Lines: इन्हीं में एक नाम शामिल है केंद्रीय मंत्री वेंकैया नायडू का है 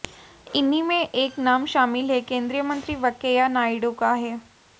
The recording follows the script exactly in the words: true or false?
true